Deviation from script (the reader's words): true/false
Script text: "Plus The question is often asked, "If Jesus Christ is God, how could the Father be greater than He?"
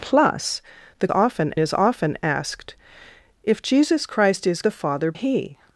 true